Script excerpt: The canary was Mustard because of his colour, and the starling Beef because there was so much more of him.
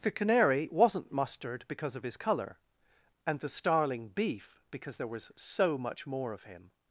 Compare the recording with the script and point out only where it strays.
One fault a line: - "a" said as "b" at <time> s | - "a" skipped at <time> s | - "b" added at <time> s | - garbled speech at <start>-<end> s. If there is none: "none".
- "was" said as "wasn't" at 0.7 s